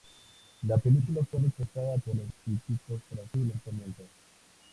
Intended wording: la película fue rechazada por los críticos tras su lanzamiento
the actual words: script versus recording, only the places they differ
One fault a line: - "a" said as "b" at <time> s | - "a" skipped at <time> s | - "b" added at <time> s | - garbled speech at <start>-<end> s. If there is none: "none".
none